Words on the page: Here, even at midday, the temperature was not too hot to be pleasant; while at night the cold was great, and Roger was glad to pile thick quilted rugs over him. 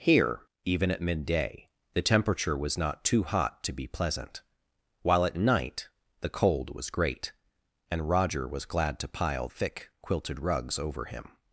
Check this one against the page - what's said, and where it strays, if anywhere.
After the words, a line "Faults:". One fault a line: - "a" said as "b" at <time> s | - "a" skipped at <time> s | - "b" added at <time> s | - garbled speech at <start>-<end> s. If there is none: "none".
Here, even at midday, the temperature was not too hot to be pleasant; while at night the cold was great, and Roger was glad to pile thick quilted rugs over him.
Faults:
none